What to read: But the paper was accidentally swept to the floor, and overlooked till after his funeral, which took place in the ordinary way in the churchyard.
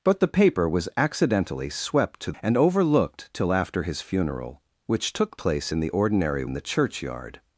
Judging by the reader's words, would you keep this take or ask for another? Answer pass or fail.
fail